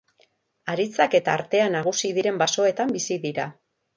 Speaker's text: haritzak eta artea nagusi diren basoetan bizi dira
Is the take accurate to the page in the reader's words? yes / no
yes